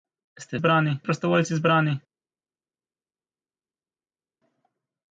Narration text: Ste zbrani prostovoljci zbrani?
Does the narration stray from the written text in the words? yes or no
no